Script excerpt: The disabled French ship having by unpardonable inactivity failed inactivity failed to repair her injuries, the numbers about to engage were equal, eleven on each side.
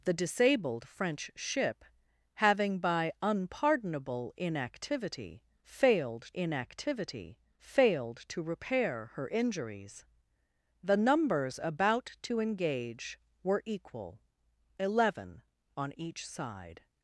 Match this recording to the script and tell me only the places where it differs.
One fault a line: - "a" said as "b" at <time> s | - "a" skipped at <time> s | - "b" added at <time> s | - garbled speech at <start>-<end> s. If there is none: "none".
none